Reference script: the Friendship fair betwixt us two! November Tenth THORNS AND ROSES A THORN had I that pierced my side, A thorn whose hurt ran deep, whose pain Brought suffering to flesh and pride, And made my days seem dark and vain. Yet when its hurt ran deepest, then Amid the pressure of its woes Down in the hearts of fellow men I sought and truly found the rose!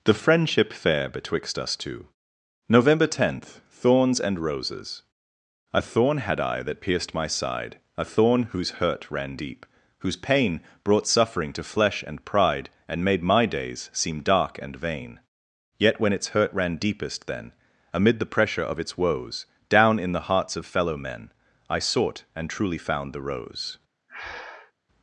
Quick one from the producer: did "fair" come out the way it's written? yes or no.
yes